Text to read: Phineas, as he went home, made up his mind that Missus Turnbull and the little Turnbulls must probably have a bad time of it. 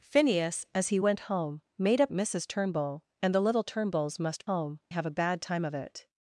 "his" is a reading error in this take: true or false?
true